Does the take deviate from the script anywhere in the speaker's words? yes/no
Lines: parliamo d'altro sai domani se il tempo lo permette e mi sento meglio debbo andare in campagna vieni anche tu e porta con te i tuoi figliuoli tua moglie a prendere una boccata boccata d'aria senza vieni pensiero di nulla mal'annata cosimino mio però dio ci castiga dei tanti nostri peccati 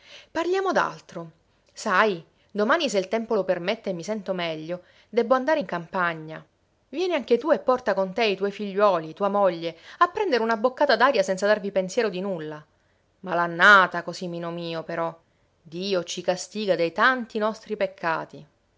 yes